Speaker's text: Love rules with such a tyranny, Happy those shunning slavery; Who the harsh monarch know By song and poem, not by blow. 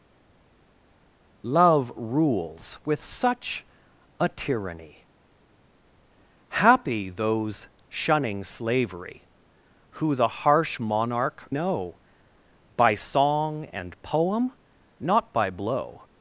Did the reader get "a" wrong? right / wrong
right